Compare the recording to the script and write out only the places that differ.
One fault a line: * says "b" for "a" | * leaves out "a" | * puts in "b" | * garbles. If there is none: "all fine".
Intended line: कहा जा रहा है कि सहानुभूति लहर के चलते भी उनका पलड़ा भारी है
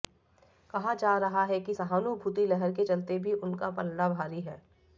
all fine